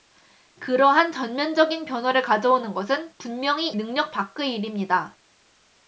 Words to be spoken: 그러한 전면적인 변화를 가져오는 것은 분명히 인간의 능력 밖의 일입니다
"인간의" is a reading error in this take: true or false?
true